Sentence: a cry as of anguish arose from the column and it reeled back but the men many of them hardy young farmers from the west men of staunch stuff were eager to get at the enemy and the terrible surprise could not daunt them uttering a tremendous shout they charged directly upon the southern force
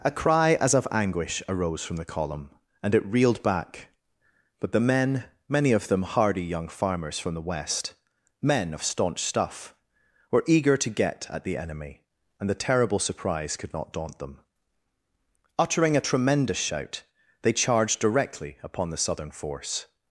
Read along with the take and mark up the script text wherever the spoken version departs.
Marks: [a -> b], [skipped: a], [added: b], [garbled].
a cry as of anguish arose from the column and it reeled back but the men many of them hardy young farmers from the west men of staunch stuff were eager to get at the enemy and the terrible surprise could not daunt them uttering a tremendous shout they charged directly upon the southern force